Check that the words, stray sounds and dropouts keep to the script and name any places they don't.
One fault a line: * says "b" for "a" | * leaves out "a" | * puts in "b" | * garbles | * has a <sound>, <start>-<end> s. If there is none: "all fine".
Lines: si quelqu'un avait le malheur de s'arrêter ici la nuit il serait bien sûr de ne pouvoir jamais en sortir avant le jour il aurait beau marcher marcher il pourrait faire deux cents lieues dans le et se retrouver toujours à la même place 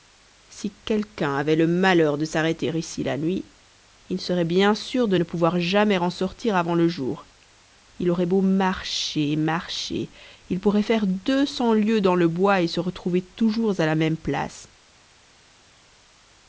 * puts in "bois"